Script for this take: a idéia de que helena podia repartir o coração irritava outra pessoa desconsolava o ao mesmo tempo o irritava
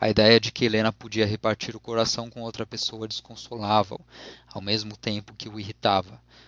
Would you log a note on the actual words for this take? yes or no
yes